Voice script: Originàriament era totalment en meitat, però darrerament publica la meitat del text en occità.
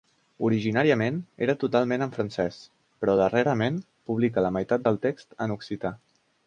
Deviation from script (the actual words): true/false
true